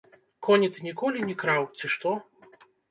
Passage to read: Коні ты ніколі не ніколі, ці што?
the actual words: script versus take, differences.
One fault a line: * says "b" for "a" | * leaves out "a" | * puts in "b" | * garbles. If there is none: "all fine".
* says "краў" for "ніколі"